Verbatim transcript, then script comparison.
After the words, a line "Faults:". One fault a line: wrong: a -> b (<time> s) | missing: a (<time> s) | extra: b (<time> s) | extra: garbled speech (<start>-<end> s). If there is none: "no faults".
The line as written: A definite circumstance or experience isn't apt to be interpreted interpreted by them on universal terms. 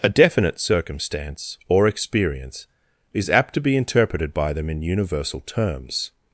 A definite circumstance or experience is apt to be interpreted by them in universal terms.
Faults:
wrong: isn't -> is (3.1 s)
missing: interpreted (4.3 s)
wrong: on -> in (4.7 s)